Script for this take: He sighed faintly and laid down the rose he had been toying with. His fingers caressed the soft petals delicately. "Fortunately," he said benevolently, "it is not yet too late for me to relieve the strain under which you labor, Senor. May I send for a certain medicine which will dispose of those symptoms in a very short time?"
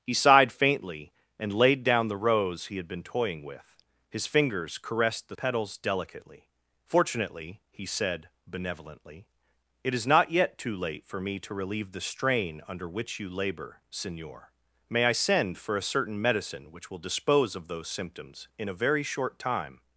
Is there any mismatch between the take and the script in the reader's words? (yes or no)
yes